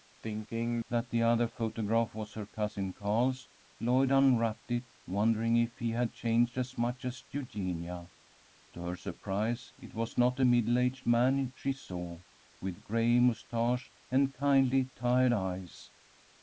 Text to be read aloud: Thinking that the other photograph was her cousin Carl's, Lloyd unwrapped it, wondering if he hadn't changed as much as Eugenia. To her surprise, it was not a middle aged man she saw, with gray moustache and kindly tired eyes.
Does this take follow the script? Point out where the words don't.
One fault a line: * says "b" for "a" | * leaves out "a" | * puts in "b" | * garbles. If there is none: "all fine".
* says "had" for "hadn't"